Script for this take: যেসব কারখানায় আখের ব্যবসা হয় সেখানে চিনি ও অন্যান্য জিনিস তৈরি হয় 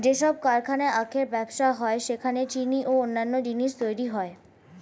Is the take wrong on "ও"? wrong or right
right